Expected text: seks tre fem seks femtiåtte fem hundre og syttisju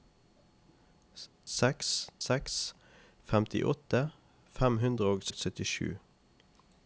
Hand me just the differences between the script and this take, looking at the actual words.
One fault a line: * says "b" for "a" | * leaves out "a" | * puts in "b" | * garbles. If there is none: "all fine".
* leaves out "tre fem"
* puts in "og"